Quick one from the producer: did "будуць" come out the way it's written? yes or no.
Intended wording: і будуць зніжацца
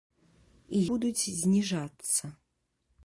yes